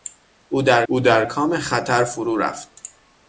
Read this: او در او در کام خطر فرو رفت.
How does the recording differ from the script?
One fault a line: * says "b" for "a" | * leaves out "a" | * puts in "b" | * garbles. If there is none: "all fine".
all fine